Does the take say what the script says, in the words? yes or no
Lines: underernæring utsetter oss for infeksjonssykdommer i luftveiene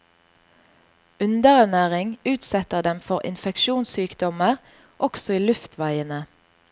no